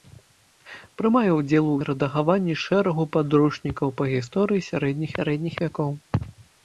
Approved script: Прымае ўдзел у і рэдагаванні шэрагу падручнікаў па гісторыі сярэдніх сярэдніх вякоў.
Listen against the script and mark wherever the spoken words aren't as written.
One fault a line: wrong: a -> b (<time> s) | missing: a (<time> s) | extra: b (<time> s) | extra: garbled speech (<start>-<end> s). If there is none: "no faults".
no faults